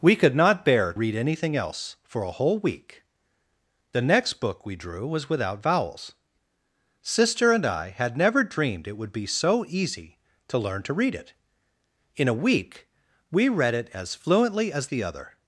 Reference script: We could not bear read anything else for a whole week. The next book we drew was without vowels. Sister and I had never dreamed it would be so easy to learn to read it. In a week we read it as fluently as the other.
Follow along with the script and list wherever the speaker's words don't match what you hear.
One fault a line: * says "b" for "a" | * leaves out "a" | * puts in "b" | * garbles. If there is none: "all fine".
all fine